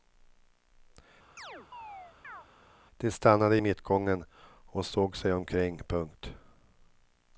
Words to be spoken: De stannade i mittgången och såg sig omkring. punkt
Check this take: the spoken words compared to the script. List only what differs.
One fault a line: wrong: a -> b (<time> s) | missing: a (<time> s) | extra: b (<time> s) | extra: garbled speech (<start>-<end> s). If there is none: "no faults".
no faults